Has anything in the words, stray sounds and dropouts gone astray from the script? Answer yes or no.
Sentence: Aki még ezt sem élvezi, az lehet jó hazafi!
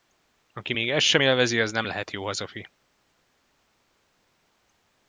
yes